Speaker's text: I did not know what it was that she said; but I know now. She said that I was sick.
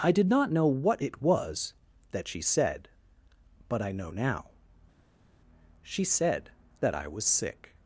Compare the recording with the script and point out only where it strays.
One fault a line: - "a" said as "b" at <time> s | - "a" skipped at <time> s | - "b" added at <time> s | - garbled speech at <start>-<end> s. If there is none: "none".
none